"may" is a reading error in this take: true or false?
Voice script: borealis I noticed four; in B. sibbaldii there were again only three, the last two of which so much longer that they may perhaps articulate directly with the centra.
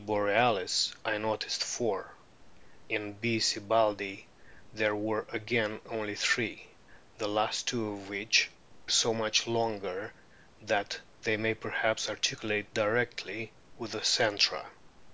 false